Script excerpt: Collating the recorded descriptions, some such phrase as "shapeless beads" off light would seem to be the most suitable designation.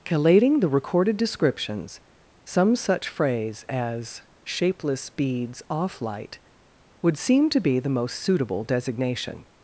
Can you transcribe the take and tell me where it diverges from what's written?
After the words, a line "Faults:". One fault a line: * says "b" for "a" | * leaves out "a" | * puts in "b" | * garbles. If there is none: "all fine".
Collating the recorded descriptions, some such phrase as "shapeless beads" off light would seem to be the most suitable designation.
Faults:
all fine